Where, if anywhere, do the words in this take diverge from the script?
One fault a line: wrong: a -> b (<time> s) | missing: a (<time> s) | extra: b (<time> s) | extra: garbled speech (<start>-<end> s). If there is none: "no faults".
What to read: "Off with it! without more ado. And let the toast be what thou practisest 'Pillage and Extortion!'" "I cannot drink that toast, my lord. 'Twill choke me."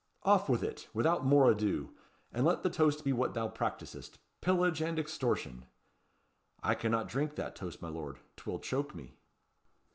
no faults